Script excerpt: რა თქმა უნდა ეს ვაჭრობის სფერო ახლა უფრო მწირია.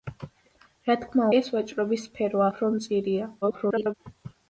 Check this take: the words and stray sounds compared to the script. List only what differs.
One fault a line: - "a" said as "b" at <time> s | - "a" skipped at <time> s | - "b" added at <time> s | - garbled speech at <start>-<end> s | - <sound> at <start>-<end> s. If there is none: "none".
- "უნდა" skipped at 1.3 s
- "ახლა" skipped at 2.5 s
- garbled speech at 3.4-3.9 s